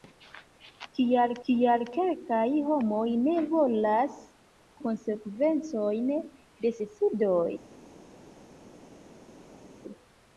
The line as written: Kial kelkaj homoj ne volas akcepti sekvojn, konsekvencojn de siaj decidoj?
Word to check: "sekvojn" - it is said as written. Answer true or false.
false